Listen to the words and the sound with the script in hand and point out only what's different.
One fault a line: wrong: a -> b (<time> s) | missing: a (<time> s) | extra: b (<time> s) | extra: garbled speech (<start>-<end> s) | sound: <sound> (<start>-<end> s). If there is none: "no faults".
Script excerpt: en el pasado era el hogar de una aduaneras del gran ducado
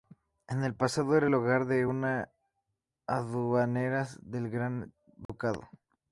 sound: dropout (5.3-5.3 s)